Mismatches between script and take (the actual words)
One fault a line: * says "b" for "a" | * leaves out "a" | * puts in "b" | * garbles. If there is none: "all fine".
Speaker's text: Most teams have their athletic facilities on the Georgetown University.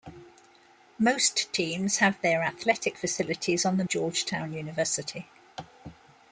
all fine